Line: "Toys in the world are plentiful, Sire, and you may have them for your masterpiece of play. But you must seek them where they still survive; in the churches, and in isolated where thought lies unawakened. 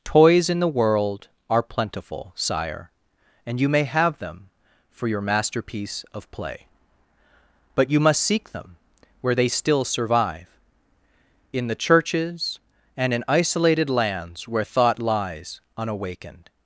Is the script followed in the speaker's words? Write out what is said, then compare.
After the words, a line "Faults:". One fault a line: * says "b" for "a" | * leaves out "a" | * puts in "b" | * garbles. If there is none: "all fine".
"Toys in the world are plentiful, Sire, and you may have them for your masterpiece of play. But you must seek them where they still survive; in the churches, and in isolated lands where thought lies unawakened.
Faults:
* puts in "lands"